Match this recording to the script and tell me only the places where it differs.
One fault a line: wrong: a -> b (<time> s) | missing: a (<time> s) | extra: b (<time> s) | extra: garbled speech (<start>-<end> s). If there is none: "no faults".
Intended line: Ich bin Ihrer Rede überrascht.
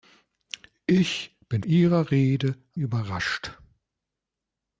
no faults